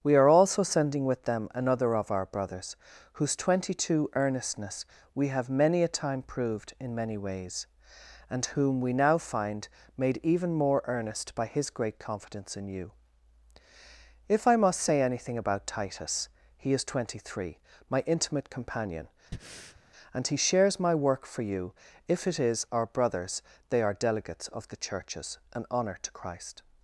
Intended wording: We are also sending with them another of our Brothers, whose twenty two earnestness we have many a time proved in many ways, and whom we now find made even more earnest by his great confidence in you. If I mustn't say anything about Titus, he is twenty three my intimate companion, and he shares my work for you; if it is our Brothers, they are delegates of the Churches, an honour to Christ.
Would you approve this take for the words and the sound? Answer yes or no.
no